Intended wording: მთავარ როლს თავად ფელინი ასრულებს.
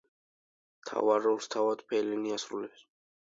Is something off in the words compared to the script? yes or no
no